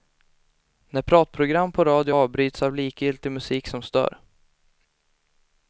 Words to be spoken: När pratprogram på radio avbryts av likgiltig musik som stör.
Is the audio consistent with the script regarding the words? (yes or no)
yes